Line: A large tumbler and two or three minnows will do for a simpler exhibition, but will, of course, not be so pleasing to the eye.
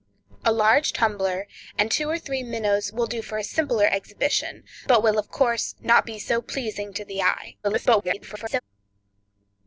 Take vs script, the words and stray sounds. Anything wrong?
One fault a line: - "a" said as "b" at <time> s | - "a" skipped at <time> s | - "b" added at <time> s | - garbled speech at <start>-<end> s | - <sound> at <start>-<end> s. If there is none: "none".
- garbled speech at 7.6-8.6 s